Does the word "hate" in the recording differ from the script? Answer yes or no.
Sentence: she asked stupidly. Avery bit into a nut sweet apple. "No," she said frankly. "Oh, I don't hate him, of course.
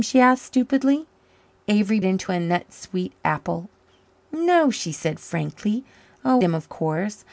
yes